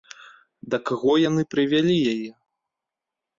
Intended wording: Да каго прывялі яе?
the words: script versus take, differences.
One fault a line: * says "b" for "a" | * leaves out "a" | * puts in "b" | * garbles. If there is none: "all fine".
* puts in "яны"